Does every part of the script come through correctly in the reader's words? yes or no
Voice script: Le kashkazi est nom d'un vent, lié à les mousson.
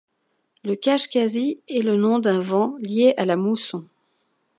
no